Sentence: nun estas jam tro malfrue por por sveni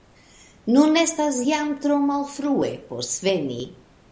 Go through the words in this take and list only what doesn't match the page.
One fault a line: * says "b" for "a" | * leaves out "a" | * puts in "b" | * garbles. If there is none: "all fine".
* leaves out "por"